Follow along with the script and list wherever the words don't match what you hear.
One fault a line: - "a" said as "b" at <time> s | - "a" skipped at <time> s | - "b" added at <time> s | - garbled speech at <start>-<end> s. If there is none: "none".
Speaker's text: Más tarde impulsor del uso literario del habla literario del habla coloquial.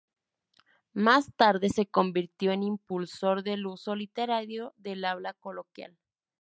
- "impulsor del uso literario" said as "se convirtió en impulsor" at 1.7 s
- "habla" said as "uso" at 3.7 s